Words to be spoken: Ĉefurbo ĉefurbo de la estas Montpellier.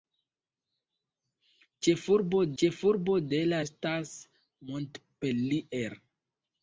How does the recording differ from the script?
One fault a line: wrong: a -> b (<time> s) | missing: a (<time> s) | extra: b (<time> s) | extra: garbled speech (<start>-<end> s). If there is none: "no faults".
no faults